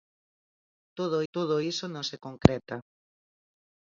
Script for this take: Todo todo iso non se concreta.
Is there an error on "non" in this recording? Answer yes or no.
no